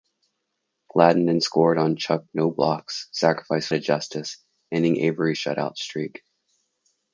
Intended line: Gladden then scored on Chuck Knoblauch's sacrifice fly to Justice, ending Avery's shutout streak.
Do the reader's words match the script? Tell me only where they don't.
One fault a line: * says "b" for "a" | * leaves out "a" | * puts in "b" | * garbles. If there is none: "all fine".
* leaves out "fly"